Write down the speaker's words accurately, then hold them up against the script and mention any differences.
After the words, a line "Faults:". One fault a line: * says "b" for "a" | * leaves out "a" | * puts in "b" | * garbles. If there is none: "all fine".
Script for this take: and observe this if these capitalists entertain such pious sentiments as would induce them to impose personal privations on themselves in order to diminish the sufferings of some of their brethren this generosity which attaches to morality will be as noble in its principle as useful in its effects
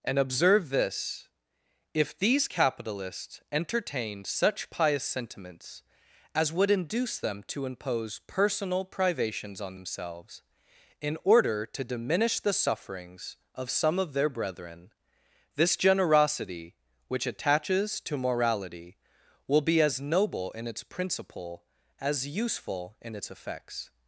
and observe this if these capitalists entertained such pious sentiments as would induce them to impose personal privations on themselves in order to diminish the sufferings of some of their brethren this generosity which attaches to morality will be as noble in its principle as useful in its effects
Faults:
* says "entertained" for "entertain"